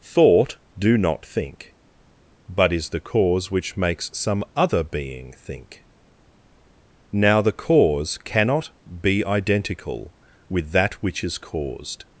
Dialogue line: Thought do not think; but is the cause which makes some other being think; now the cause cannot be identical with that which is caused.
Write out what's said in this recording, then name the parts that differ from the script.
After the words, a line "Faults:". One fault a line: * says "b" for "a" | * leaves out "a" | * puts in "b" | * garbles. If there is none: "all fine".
Thought do not think; but is the cause which makes some other being think; now the cause cannot be identical with that which is caused.
Faults:
all fine